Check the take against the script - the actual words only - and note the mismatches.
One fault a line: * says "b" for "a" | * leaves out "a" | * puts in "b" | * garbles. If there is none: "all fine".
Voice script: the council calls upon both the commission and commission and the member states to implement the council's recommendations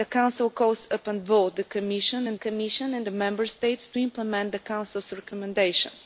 all fine